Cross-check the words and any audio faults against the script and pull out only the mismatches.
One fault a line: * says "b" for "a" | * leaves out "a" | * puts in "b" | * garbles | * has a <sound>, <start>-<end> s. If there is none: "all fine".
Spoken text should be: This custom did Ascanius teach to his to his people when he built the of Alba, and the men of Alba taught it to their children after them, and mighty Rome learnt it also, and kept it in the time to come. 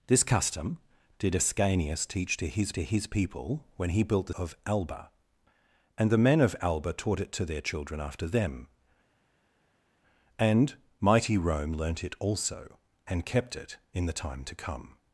all fine